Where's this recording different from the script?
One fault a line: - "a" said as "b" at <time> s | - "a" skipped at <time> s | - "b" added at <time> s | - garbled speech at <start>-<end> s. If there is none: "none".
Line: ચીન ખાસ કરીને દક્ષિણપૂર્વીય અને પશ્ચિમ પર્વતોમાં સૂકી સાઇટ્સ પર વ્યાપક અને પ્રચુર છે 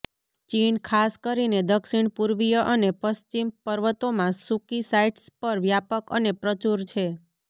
none